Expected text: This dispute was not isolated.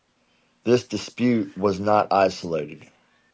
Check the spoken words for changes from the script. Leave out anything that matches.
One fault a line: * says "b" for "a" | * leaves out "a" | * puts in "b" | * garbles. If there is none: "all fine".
all fine